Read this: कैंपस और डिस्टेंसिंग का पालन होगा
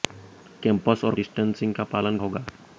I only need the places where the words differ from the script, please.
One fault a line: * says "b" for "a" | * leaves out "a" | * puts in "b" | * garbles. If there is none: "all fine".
all fine